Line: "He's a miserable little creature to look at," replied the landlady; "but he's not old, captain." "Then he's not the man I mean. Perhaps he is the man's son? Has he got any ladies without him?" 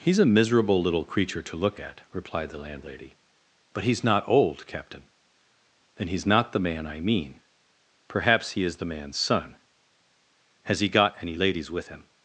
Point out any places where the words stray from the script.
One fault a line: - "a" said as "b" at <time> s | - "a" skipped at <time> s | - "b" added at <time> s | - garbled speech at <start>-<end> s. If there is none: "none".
- "without" said as "with" at 11.7 s